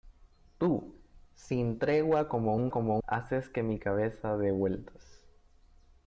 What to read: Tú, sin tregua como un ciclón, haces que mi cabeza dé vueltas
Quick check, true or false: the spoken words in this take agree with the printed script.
false